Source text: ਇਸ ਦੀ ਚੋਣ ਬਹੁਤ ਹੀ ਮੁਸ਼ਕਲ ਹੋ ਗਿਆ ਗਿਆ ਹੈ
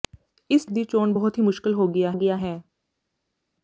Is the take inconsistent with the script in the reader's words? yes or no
no